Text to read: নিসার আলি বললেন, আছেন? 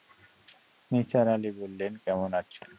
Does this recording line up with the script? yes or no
no